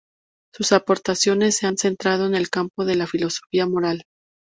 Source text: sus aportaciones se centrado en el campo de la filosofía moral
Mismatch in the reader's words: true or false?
true